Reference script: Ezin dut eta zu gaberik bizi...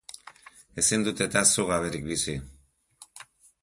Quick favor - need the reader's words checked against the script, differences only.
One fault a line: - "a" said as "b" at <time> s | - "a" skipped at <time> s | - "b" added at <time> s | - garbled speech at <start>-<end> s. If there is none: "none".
none